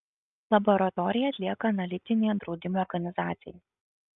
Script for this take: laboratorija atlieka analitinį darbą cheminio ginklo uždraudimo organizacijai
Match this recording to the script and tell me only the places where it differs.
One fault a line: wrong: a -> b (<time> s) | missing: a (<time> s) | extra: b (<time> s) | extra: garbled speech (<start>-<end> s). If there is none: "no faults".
missing: darbą cheminio ginklo (2.4 s)